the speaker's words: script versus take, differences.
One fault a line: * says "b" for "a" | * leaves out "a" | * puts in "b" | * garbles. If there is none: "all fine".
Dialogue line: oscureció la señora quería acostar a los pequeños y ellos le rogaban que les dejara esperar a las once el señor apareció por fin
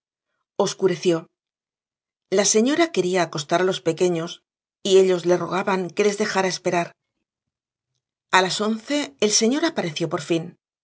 all fine